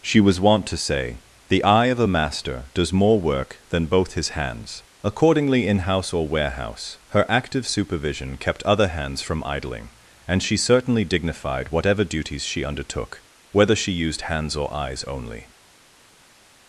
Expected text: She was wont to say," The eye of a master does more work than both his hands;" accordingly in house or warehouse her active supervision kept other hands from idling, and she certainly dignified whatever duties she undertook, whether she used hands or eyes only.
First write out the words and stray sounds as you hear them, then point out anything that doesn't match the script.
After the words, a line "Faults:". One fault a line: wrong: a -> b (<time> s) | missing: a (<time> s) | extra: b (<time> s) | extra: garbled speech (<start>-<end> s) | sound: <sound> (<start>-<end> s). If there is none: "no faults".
She was wont to say," The eye of a master does more work than both his hands;" accordingly in house or warehouse her active supervision kept other hands from idling, and she certainly dignified whatever duties she undertook, whether she used hands or eyes only.
Faults:
no faults